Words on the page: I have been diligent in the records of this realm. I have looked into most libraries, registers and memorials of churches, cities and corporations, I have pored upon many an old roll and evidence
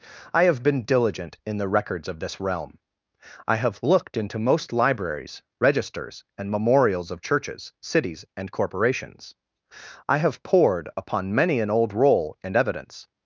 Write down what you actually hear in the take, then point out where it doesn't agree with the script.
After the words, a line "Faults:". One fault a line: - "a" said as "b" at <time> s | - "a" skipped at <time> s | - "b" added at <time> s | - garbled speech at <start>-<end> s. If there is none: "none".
I have been diligent in the records of this realm. I have looked into most libraries, registers and memorials of churches, cities and corporations, I have pored upon many an old roll and evidence
Faults:
none